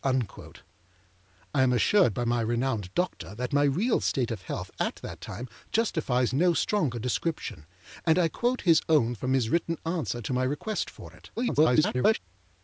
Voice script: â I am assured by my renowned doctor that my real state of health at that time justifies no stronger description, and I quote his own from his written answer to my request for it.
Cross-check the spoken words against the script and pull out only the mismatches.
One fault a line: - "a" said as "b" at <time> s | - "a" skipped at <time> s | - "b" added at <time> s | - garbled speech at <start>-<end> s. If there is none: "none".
- garbled speech at 11.4-12.2 s